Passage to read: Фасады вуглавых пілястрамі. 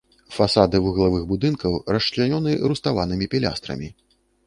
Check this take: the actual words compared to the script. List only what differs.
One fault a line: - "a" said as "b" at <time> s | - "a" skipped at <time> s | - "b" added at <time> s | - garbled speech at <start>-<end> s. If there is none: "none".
- "будынкаў расчлянёны руставанымі" added at 1.3 s